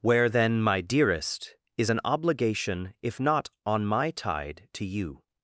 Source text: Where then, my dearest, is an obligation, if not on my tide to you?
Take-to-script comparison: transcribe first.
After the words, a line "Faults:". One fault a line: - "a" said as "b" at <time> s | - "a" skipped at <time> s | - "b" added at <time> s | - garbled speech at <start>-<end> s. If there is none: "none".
Where then, my dearest, is an obligation, if not on my tide to you?
Faults:
none